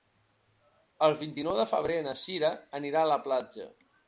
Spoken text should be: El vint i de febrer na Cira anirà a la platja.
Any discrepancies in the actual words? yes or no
yes